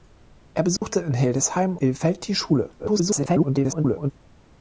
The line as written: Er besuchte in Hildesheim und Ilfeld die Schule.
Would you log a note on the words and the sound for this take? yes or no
yes